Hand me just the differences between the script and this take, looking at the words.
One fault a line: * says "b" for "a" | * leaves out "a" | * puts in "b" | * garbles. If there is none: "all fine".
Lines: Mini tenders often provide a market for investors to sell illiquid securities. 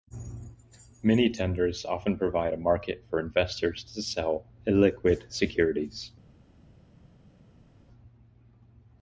all fine